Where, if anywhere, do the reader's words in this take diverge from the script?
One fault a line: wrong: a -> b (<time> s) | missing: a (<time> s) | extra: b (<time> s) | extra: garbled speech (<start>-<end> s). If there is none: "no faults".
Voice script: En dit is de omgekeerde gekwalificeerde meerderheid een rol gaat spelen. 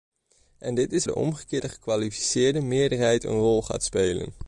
no faults